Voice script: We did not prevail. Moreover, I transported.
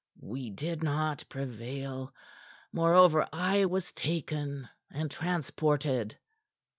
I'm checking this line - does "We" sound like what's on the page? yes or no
yes